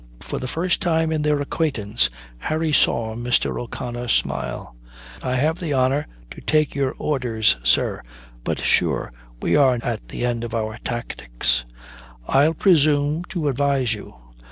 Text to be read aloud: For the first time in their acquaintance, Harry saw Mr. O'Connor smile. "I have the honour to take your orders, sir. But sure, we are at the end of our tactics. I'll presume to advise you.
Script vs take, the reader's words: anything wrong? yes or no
no